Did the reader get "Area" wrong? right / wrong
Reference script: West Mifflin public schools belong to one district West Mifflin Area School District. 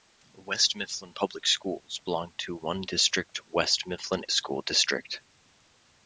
wrong